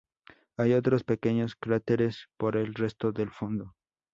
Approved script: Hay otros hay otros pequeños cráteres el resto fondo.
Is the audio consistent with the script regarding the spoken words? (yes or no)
no